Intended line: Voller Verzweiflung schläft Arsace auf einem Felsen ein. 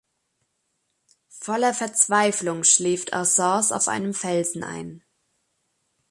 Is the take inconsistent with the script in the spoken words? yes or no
no